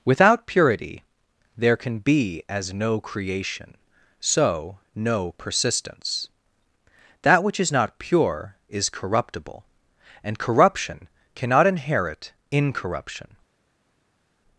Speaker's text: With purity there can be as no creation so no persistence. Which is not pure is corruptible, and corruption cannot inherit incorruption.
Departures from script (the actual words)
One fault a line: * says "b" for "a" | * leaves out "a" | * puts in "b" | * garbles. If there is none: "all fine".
* says "Without" for "With"
* puts in "That"